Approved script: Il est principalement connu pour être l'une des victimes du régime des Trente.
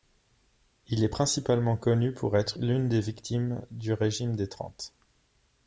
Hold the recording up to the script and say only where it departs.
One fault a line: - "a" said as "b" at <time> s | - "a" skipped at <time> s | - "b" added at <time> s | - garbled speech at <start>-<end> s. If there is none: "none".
none